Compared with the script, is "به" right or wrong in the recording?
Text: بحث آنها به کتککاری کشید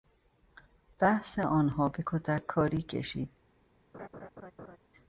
right